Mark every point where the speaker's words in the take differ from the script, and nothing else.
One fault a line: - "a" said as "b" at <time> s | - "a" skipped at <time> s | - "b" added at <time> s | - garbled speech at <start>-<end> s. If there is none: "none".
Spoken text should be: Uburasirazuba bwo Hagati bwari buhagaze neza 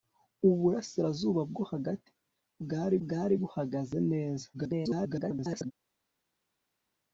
- "bwari" added at 3.0 s
- garbled speech at 4.5-5.7 s